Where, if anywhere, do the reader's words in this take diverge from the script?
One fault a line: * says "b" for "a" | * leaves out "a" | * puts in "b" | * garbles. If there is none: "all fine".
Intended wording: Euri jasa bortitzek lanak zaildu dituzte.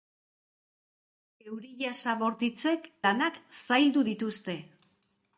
all fine